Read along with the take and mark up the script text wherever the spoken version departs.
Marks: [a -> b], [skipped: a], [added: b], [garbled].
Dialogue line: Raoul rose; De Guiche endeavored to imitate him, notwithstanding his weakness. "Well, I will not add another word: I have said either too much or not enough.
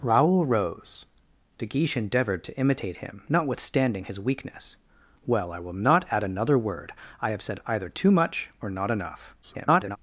Raoul rose; De Guiche endeavored to imitate him, notwithstanding his weakness. "Well, I will not add another word: I have said either too much or not enough. [garbled]